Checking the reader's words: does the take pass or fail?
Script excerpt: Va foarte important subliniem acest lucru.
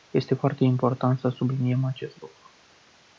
fail